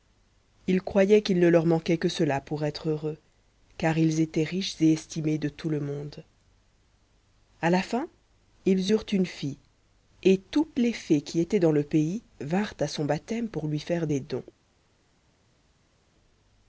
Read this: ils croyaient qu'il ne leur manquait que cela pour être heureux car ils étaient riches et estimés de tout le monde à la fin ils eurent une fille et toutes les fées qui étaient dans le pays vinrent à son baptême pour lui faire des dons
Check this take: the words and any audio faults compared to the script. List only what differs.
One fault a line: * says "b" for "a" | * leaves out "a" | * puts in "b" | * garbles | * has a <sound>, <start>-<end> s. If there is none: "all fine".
all fine